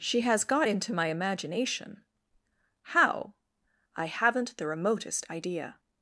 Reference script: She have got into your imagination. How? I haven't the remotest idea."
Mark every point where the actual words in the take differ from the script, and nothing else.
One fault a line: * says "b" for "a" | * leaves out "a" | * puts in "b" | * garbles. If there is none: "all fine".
* says "has" for "have"
* says "my" for "your"